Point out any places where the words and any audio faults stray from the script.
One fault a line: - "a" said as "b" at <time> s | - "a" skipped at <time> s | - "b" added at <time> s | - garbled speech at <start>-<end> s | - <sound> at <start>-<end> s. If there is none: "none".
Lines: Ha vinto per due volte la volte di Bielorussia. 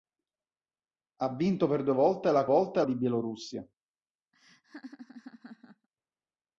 - laugh at 4.3-5.9 s